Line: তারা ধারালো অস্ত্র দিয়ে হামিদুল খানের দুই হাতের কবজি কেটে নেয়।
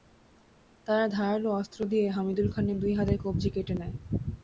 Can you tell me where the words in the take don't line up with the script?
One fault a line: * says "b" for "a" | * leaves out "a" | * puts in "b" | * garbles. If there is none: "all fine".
all fine